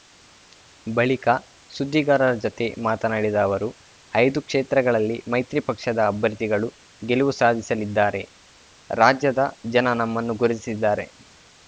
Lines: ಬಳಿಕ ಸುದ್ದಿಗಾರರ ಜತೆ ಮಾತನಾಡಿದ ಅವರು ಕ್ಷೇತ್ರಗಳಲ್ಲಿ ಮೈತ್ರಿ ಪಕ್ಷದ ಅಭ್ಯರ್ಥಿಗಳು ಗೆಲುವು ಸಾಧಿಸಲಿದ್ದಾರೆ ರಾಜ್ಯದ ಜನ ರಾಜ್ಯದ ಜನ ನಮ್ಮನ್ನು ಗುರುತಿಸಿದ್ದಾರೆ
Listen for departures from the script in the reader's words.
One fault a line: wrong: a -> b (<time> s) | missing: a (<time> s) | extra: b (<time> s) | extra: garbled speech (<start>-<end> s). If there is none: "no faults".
extra: ಐದು (4.1 s)
missing: ರಾಜ್ಯದ ಜನ (9.9 s)